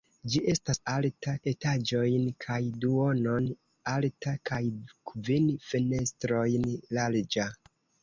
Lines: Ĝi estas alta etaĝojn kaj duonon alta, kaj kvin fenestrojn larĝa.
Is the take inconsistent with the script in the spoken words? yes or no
no